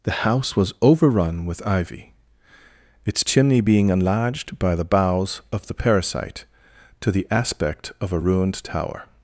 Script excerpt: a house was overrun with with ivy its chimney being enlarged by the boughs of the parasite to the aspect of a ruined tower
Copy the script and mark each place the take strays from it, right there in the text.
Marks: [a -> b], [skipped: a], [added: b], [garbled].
[a -> the] house was overrun with [skipped: with] ivy its chimney being enlarged by the boughs of the parasite to the aspect of a ruined tower